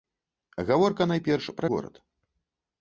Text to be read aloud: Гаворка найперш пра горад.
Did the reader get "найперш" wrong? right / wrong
right